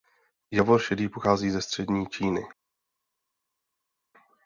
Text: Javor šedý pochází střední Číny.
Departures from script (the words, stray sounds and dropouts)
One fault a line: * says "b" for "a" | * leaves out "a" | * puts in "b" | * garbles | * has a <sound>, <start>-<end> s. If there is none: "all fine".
* puts in "ze"